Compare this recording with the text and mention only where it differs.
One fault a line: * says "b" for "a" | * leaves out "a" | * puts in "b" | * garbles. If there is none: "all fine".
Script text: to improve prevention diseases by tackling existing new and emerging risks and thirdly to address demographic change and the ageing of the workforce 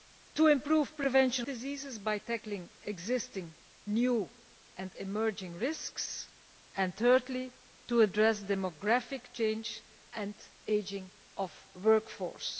all fine